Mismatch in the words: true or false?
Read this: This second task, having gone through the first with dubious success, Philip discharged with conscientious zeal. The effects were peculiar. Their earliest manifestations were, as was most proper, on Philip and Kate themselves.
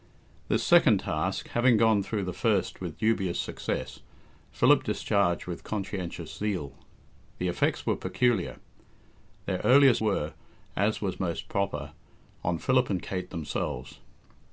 true